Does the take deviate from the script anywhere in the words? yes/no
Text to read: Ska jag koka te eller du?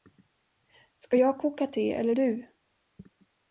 no